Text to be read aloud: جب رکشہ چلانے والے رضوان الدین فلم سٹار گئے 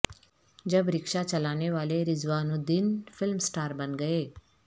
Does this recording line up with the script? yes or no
no